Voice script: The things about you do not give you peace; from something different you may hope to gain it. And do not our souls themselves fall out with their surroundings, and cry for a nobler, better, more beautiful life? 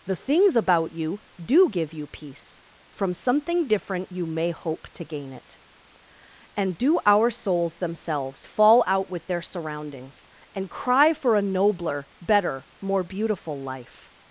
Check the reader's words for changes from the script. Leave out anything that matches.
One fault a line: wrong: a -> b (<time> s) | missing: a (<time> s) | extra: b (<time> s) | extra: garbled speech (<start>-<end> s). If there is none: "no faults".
missing: not (1.7 s)
missing: not (7.0 s)